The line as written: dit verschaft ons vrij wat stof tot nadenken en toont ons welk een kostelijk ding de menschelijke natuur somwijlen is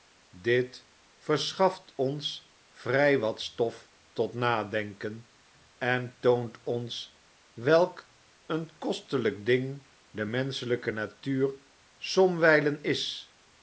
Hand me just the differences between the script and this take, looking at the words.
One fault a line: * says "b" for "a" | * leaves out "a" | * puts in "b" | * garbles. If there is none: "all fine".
all fine